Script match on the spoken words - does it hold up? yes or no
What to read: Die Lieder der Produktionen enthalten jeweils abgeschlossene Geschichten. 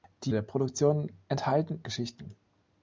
no